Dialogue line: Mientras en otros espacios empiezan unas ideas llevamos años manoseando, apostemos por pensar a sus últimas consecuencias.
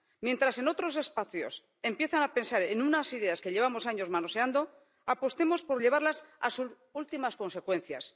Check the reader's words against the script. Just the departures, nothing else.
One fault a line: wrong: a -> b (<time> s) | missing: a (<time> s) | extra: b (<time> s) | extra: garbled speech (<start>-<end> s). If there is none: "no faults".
extra: a pensar en (2.2 s)
extra: que (3.4 s)
wrong: pensar -> llevarlas (5.8 s)